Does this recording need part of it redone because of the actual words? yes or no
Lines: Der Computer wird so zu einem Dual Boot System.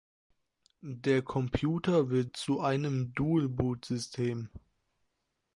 yes